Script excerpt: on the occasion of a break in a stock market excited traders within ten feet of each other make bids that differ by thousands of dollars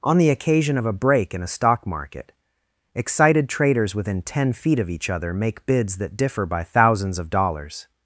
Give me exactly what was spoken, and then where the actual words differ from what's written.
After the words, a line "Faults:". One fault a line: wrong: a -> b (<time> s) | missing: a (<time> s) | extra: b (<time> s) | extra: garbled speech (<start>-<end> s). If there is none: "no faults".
on the occasion of a break in a stock market excited traders within ten feet of each other make bids that differ by thousands of dollars
Faults:
no faults